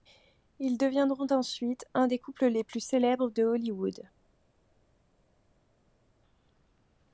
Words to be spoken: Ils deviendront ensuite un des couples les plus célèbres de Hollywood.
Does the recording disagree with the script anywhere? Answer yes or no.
no